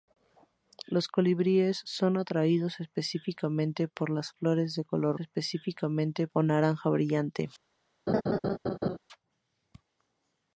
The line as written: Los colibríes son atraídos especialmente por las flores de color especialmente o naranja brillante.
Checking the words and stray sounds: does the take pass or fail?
fail